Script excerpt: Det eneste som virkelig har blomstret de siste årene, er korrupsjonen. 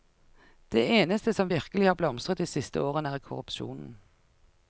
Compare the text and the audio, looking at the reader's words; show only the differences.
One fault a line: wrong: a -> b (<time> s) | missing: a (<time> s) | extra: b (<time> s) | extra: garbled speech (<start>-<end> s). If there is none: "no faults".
no faults